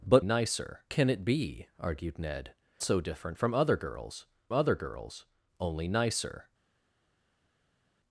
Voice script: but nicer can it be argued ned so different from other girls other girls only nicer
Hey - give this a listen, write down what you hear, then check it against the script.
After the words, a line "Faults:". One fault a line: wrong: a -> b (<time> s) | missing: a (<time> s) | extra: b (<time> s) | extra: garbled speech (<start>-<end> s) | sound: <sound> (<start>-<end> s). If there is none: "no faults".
but nicer can it be argued ned so different from other girls other girls only nicer
Faults:
no faults